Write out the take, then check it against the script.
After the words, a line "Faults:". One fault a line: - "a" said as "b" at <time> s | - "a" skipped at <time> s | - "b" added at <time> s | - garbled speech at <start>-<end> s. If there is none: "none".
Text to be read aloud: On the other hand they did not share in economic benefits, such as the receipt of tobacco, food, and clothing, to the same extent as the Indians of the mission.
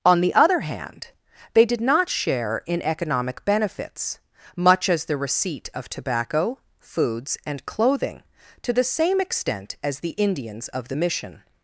On the other hand they did not share in economic benefits, much as the receipt of tobacco, foods, and clothing, to the same extent as the Indians of the mission.
Faults:
- "such" said as "much" at 4.5 s
- "food" said as "foods" at 6.8 s